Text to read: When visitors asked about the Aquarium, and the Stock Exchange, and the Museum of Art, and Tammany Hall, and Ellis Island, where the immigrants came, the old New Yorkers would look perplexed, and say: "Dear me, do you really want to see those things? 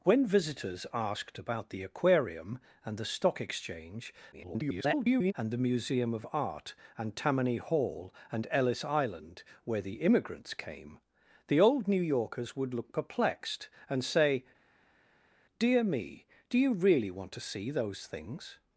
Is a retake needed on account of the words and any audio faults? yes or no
yes